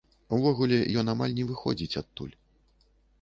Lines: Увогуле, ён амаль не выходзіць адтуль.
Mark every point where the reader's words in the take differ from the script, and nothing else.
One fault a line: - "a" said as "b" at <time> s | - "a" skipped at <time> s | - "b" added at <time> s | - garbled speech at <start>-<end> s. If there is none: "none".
none